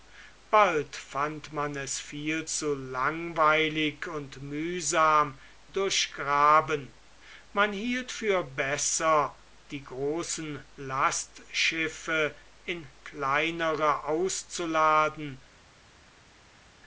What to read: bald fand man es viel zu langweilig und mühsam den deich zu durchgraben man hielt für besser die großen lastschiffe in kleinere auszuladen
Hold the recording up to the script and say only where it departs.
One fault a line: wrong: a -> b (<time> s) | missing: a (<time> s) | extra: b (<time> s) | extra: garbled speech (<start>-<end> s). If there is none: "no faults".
missing: den deich zu (5.4 s)